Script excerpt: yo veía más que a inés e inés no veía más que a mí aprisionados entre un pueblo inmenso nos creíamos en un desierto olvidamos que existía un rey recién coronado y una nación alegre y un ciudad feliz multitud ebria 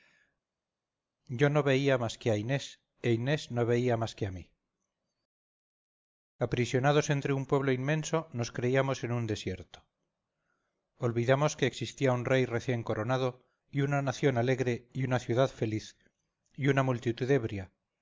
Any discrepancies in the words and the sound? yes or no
yes